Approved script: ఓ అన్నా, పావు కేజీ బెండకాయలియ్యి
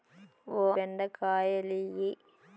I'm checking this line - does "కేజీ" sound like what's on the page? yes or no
no